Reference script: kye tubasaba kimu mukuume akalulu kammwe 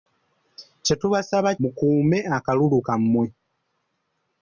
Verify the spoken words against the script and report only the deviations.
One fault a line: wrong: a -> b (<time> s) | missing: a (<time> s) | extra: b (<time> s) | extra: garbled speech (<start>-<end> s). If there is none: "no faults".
missing: kimu (1.5 s)